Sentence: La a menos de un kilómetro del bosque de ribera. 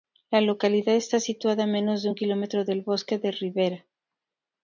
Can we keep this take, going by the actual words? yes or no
no